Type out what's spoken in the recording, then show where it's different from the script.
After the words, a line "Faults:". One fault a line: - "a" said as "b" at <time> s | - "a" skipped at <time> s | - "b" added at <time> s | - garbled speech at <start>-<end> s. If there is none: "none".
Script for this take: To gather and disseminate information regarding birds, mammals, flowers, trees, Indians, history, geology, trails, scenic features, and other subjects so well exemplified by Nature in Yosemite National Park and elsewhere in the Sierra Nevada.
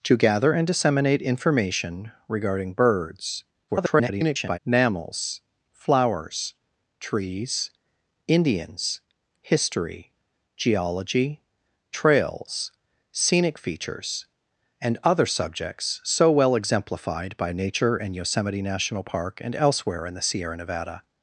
To gather and disseminate information regarding birds, [garbled] mammals, flowers, trees, Indians, history, geology, trails, scenic features, and other subjects so well exemplified by Nature in Yosemite National Park and elsewhere in the Sierra Nevada.
Faults:
- garbled speech at 3.7-4.6 s